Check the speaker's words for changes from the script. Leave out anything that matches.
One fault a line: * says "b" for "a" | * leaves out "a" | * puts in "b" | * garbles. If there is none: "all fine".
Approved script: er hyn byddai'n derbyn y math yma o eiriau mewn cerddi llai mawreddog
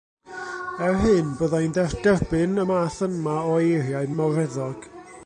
* leaves out "mewn cerddi llai"